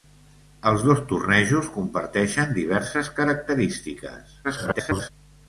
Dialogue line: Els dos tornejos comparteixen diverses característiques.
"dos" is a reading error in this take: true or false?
false